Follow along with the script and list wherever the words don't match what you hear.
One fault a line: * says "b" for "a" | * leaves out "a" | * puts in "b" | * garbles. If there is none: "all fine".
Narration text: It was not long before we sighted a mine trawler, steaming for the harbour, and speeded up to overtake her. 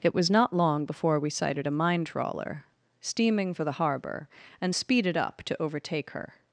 all fine